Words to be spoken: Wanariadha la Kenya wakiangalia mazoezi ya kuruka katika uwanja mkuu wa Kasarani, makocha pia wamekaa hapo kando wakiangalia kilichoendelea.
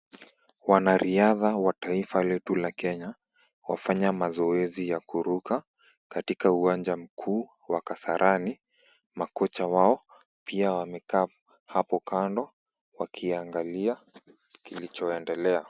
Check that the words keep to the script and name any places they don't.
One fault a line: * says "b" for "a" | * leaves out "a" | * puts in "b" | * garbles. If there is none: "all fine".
* puts in "wa taifa letu"
* says "wafanya" for "wakiangalia"
* puts in "wao"